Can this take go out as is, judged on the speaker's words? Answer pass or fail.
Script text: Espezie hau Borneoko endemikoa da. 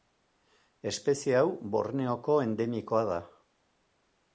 pass